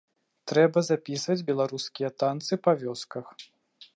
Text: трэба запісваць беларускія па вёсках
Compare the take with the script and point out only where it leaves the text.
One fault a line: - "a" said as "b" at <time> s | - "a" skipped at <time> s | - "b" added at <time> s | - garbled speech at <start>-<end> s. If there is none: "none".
- "танцы" added at 2.2 s